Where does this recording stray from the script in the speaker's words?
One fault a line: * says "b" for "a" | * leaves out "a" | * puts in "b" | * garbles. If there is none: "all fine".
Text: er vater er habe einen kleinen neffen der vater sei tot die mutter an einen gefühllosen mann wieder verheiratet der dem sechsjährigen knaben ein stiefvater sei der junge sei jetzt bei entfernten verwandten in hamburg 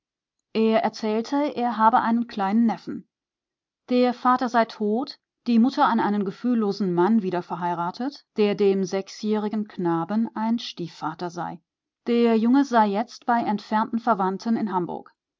* says "erzählte" for "vater"